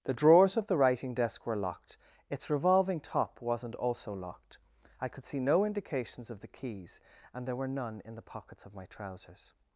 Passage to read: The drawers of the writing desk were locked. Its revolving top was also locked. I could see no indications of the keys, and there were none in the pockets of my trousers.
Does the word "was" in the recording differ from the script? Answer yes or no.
yes